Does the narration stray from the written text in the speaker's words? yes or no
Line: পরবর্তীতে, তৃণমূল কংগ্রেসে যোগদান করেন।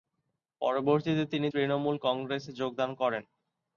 yes